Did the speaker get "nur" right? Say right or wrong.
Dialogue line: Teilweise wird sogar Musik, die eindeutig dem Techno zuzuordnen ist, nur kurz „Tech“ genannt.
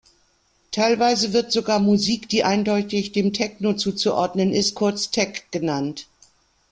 wrong